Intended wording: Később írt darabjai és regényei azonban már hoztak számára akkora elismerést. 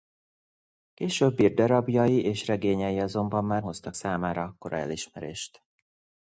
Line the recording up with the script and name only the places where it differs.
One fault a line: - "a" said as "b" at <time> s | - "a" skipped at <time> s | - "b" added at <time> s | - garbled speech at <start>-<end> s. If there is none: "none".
none